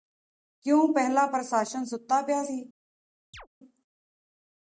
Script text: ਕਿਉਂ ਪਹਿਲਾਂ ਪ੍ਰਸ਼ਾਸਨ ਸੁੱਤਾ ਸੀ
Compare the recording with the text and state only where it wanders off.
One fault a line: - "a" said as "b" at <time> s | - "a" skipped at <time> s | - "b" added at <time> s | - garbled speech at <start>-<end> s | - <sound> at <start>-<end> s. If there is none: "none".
- "ਪਿਆ" added at 2.2 s
- chirp at 3.3-3.5 s